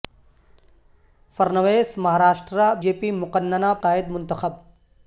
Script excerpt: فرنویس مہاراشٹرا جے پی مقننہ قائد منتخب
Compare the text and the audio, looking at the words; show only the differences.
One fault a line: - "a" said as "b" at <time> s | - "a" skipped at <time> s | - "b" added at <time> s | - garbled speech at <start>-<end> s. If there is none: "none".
none